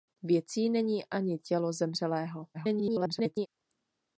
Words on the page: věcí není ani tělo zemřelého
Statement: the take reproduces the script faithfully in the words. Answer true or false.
false